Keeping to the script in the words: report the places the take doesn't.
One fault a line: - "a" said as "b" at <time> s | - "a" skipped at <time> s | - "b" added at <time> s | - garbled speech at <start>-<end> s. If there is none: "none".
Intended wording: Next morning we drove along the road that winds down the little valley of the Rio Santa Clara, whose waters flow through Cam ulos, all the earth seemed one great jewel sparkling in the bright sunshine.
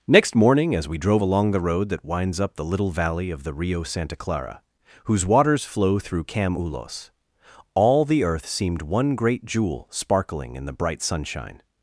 - "as" added at 0.7 s
- "down" said as "up" at 2.4 s